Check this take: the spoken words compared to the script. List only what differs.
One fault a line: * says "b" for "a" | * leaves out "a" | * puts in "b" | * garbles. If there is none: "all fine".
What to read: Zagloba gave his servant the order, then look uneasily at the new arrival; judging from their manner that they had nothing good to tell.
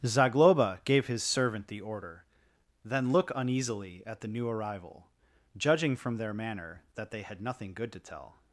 all fine